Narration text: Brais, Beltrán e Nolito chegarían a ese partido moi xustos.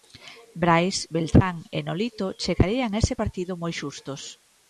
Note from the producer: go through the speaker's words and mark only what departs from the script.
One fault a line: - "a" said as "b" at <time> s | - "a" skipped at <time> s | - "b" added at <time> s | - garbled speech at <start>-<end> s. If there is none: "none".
none